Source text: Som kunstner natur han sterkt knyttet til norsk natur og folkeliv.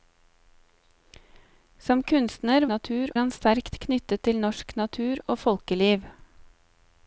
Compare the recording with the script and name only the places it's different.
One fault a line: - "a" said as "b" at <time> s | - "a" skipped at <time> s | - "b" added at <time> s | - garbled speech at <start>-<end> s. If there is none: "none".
none